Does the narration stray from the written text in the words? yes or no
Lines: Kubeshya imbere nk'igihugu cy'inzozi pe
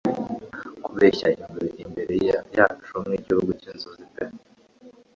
yes